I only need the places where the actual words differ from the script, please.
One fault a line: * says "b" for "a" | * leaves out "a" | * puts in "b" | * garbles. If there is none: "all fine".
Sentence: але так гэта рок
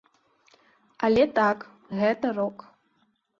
all fine